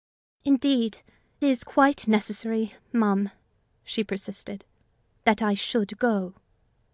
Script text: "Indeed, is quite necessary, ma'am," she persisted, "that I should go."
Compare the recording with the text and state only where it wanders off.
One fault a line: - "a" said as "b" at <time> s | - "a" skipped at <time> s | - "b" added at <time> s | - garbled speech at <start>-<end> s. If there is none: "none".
none